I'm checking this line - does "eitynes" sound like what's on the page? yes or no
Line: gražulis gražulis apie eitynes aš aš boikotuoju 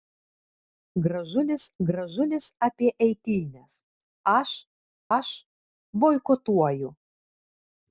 yes